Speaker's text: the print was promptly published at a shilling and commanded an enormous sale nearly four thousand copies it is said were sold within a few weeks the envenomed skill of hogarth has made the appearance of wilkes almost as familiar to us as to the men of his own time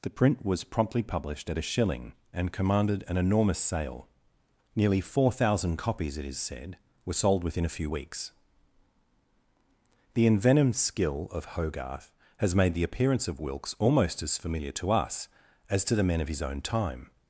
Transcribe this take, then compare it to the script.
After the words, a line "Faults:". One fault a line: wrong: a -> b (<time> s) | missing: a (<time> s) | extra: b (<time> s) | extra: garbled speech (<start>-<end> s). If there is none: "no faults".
the print was promptly published at a shilling and commanded an enormous sale nearly four thousand copies it is said were sold within a few weeks the envenomed skill of hogarth has made the appearance of wilkes almost as familiar to us as to the men of his own time
Faults:
no faults